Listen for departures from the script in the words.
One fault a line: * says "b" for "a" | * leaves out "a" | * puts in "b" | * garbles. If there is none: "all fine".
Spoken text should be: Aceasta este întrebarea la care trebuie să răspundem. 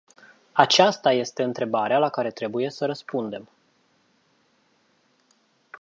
all fine